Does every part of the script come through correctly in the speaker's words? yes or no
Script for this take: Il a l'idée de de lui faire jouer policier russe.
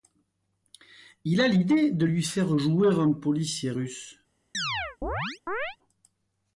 no